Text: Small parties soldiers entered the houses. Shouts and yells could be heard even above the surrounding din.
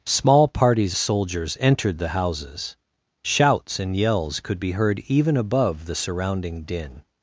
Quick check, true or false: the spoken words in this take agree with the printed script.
true